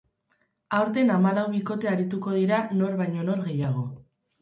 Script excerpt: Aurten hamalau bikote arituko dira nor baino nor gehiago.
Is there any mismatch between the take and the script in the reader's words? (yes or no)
no